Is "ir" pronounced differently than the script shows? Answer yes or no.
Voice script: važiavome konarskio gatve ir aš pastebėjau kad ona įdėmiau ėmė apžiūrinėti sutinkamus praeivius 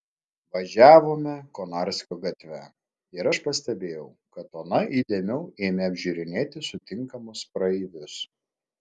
no